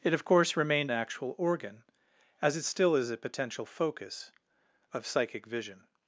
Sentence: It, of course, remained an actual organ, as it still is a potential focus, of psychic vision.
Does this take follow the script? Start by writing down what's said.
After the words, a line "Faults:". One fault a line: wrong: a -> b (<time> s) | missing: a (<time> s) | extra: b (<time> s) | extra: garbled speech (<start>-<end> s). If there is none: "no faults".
It, of course, remained actual organ, as it still is a potential focus, of psychic vision.
Faults:
missing: an (0.9 s)